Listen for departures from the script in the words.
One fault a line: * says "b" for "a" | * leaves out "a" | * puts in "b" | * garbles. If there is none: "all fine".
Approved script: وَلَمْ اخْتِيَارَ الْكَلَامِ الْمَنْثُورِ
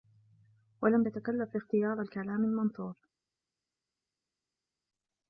* puts in "تَتَكَلَّفْ"